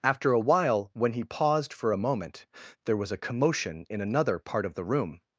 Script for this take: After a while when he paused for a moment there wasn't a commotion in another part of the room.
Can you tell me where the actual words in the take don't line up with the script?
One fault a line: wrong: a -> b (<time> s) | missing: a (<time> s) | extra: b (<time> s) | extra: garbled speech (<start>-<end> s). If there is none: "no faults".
wrong: wasn't -> was (3.0 s)